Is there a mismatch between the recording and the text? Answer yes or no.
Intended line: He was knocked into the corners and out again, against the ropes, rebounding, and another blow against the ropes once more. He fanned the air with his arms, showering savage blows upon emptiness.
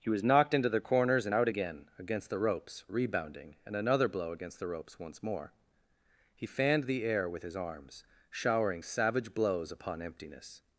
no